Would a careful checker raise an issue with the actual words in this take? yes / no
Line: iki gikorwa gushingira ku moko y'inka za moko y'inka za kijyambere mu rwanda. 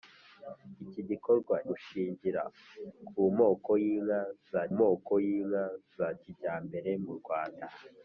no